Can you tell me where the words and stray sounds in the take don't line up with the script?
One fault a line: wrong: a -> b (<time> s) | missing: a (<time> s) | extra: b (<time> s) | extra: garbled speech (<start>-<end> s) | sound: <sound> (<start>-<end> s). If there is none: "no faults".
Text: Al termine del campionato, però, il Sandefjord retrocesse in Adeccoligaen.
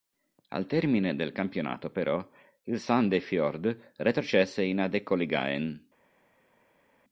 no faults